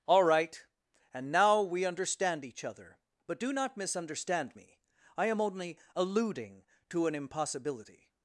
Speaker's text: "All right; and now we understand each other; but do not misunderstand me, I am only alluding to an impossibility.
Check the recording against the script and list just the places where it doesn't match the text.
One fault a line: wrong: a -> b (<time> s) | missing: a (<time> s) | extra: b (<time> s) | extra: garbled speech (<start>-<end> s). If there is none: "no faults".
no faults